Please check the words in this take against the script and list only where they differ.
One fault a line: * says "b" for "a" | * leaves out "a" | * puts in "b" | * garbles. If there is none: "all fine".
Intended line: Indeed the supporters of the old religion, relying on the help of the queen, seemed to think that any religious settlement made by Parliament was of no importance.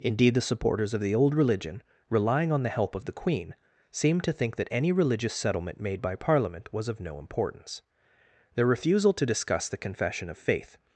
* puts in "Their refusal to discuss the confession of faith"